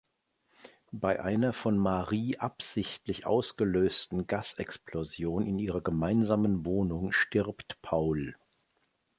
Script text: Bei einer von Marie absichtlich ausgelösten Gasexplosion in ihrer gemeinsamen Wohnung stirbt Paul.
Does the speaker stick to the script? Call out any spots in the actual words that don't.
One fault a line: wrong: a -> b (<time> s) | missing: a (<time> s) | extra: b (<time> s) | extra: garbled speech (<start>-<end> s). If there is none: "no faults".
no faults